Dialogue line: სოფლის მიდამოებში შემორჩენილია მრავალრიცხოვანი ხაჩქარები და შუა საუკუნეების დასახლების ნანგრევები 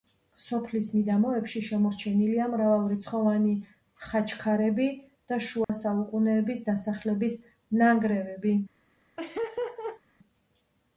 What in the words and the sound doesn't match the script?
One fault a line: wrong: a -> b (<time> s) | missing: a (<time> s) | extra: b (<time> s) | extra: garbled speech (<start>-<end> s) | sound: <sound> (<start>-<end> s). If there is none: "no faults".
sound: dropout (5.6-5.7 s)
sound: laugh (9.2-10.0 s)